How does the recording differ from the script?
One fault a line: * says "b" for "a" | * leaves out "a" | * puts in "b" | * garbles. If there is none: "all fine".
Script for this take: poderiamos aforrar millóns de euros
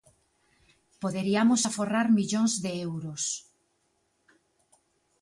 all fine